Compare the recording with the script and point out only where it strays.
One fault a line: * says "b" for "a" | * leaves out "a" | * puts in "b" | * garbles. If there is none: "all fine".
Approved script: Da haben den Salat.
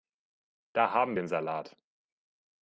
all fine